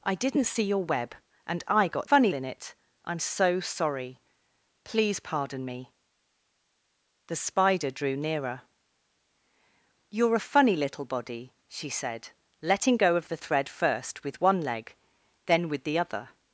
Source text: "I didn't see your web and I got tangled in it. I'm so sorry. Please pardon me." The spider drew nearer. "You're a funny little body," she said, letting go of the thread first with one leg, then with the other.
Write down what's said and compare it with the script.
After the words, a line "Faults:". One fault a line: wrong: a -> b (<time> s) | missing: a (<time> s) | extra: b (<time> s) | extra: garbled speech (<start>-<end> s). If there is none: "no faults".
"I didn't see your web and I got funny in it. I'm so sorry. Please pardon me." The spider drew nearer. "You're a funny little body," she said, letting go of the thread first with one leg, then with the other.
Faults:
wrong: tangled -> funny (2.1 s)